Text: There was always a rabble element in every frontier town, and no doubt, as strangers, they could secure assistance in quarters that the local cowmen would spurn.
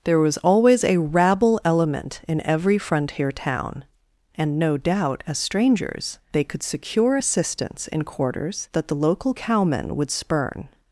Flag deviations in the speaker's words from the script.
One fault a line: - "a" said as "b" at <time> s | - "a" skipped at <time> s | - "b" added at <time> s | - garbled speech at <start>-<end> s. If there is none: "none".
none